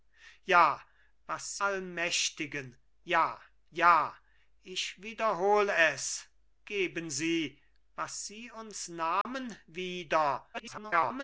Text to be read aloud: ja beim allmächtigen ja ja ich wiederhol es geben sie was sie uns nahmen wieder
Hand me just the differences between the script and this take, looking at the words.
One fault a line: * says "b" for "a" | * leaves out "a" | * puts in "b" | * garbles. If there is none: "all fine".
* says "was" for "beim"
* garbles